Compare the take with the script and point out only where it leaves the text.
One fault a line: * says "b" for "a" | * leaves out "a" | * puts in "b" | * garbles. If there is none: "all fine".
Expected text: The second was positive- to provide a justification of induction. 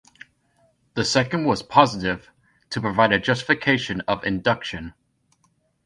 all fine